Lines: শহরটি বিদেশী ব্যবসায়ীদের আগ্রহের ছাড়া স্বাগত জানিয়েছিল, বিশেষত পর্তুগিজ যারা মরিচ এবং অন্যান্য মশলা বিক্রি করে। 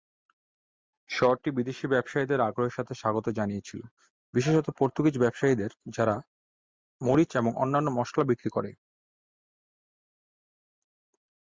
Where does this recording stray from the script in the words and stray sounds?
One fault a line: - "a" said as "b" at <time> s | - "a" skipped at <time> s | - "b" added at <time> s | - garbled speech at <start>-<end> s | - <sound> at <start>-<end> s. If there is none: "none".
- "ছাড়া" said as "সাথে" at 2.8 s
- "ব্যবসায়ীদের" added at 5.2 s